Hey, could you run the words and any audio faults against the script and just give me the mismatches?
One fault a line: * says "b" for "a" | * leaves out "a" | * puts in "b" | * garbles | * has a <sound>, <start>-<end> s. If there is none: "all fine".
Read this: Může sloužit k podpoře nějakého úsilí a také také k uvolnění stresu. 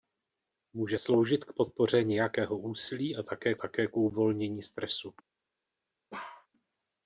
* has a bark, 6.1-6.5 s